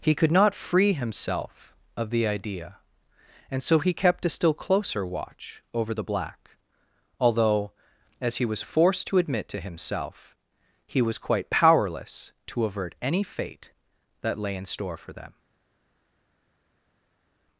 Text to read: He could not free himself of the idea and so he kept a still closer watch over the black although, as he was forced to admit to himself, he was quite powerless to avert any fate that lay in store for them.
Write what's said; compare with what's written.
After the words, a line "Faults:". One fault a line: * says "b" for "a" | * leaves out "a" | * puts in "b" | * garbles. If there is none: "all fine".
He could not free himself of the idea and so he kept a still closer watch over the black although, as he was forced to admit to himself, he was quite powerless to avert any fate that lay in store for them.
Faults:
all fine